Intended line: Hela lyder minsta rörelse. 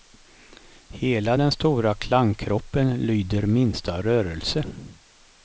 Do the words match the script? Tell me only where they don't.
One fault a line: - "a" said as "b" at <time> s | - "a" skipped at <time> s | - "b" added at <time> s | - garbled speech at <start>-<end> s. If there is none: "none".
- "den stora klangkroppen" added at 1.3 s